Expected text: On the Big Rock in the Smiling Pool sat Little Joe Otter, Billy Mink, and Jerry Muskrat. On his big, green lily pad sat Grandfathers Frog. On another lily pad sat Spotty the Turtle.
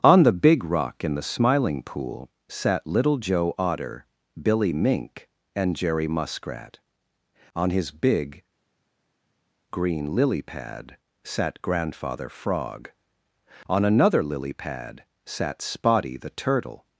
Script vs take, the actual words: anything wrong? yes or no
yes